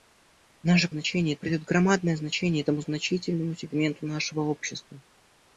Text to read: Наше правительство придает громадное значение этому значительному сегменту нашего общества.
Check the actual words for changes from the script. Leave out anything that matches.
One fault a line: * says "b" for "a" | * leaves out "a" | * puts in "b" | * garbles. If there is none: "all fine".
* says "значение" for "правительство"